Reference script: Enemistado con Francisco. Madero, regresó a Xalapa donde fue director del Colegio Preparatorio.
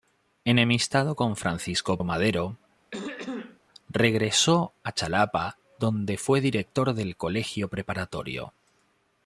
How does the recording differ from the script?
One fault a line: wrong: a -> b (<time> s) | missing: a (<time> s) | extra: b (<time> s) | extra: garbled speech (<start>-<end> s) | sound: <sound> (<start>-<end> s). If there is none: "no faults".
sound: throat clearing (2.9-3.6 s)